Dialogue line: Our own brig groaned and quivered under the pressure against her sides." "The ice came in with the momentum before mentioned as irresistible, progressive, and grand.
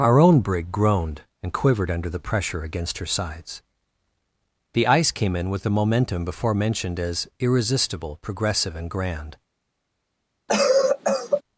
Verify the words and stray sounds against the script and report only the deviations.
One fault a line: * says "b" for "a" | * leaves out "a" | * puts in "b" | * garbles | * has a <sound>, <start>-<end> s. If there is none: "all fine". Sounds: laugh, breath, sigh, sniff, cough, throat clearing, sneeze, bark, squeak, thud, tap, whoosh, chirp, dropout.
* has a cough, 10.5-11.4 s